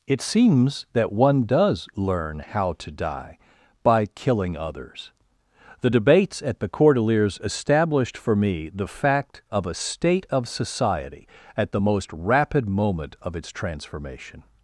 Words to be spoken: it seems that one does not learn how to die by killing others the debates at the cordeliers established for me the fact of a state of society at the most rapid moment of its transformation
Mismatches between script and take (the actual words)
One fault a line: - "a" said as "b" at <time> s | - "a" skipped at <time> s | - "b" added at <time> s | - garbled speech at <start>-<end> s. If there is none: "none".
- "not" skipped at 1.9 s